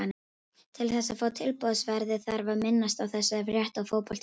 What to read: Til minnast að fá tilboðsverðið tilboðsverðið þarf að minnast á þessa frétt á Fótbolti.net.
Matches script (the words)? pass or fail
fail